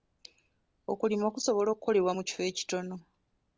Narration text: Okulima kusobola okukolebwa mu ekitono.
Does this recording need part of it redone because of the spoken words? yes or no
yes